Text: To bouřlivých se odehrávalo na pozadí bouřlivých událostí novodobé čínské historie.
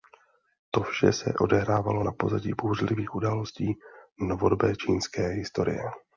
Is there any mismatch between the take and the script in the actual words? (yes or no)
yes